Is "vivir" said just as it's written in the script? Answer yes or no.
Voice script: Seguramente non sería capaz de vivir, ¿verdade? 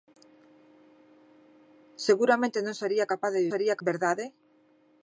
no